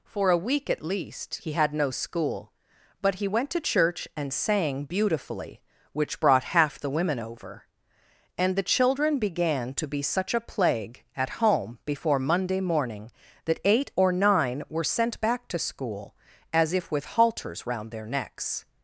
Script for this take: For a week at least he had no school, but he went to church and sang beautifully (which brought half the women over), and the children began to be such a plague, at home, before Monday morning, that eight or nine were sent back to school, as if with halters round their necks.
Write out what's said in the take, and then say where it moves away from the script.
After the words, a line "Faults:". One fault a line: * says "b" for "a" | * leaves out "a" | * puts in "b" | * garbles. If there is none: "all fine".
For a week at least he had no school, but he went to church and sang beautifully (which brought half the women over), and the children began to be such a plague, at home, before Monday morning, that eight or nine were sent back to school, as if with halters round their necks.
Faults:
all fine